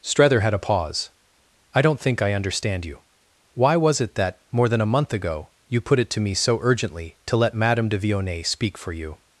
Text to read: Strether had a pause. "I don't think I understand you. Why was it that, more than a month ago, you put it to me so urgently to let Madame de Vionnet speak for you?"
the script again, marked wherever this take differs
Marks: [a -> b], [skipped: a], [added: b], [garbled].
Strether had a pause. "I don't think I understand you. Why was it that, more than a month ago, you put it to me so urgently to let Madame de Vionnet speak for you?"